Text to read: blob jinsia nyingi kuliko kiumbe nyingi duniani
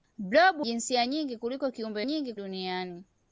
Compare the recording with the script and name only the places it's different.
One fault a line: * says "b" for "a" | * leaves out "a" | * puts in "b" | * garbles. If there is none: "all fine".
all fine